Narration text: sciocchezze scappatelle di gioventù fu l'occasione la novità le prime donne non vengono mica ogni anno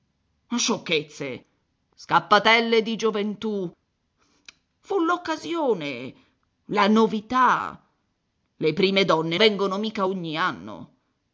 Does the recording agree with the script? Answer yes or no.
no